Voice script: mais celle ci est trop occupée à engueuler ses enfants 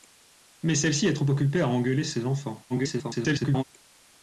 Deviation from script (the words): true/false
true